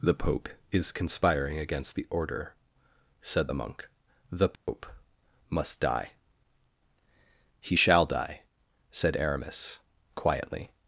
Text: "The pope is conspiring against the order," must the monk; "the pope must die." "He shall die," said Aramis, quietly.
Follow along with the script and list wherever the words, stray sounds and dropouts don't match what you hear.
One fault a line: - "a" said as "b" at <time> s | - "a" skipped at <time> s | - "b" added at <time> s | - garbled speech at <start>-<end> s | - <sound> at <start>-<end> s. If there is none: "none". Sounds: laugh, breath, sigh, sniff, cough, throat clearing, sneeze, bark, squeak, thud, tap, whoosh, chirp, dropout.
- "must" said as "said" at 3.2 s
- dropout at 4.6-4.7 s